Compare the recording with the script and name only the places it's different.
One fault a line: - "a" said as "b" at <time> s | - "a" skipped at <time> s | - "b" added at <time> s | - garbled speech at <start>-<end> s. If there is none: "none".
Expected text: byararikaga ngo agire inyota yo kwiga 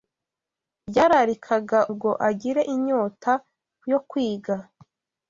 none